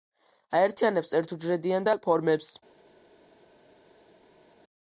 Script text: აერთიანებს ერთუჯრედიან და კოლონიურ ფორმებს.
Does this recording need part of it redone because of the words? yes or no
yes